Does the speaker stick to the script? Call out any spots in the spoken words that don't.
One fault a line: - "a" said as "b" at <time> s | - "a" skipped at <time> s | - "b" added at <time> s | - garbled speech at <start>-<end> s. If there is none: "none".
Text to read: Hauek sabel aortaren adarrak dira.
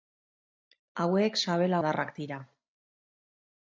- "aortaren" skipped at 1.8 s